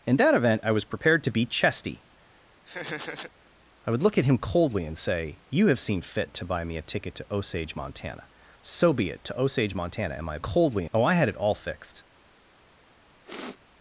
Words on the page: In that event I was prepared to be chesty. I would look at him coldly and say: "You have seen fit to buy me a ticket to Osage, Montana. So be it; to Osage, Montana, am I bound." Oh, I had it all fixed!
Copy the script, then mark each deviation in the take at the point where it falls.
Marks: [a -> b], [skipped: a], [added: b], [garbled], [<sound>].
In that event I was prepared to be chesty. [laugh] I would look at him coldly and say: "You have seen fit to buy me a ticket to Osage, Montana. So be it; to Osage, Montana, am I [bound." -> coldly] Oh, I had it all fixed! [sniff]